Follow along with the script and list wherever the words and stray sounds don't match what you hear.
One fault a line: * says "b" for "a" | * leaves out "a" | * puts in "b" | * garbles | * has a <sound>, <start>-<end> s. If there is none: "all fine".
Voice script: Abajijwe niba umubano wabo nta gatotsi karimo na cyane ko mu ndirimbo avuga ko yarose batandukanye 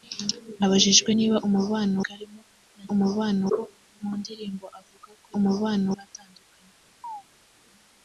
* leaves out "wabo nta gatotsi"
* says "umubano" for "cyane"
* says "umubano" for "yarose"
* has a chirp, 7.0-7.2 s